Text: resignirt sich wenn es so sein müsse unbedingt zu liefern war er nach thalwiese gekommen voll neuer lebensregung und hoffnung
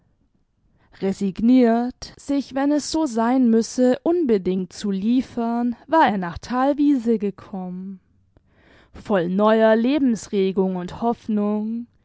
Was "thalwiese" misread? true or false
false